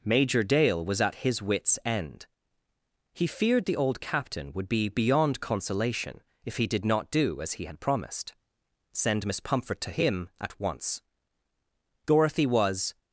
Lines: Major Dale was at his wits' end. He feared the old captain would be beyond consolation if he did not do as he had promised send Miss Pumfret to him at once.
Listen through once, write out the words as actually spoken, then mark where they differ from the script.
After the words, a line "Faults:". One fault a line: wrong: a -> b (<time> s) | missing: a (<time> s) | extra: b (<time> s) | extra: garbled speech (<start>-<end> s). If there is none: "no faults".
Major Dale was at his wits' end. He feared the old captain would be beyond consolation if he did not do as he had promised send Miss Pumfret to him at once. Dorothy was
Faults:
extra: Dorothy was (12.1 s)